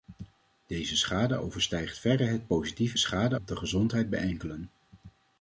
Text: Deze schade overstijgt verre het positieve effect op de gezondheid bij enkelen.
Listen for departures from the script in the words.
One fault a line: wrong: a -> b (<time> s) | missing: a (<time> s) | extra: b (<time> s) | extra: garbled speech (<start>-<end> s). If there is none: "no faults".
wrong: effect -> schade (3.0 s)